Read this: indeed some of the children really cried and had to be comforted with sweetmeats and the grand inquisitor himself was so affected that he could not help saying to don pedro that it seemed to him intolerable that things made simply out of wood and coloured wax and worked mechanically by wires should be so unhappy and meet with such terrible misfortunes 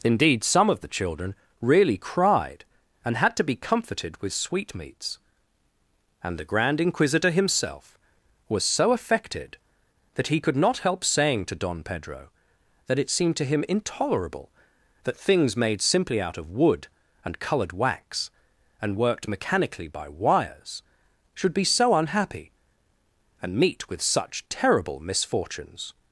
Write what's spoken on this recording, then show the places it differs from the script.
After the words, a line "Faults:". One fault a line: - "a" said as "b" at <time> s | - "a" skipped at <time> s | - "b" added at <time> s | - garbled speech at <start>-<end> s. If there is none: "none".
indeed some of the children really cried and had to be comforted with sweetmeats and the grand inquisitor himself was so affected that he could not help saying to don pedro that it seemed to him intolerable that things made simply out of wood and coloured wax and worked mechanically by wires should be so unhappy and meet with such terrible misfortunes
Faults:
none